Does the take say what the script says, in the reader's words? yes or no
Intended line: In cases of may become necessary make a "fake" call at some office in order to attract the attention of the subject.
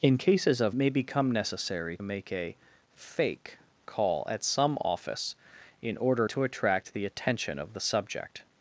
yes